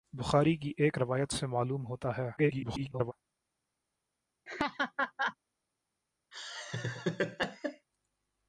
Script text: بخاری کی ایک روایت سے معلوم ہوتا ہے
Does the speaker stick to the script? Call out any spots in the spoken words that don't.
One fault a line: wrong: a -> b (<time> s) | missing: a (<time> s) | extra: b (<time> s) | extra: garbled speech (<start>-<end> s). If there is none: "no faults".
extra: garbled speech (2.4-3.1 s)